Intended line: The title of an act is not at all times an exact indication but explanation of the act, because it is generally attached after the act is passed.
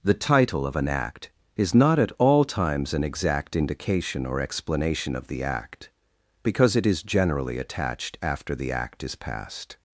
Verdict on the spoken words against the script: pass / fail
fail